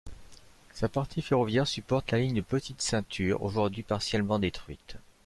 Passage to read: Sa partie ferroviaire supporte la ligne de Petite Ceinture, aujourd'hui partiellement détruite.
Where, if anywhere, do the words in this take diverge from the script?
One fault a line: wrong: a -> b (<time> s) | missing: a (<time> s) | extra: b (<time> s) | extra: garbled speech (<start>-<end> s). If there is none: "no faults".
no faults